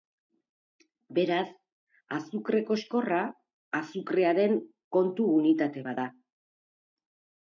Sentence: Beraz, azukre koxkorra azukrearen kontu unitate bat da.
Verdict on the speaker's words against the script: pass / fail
pass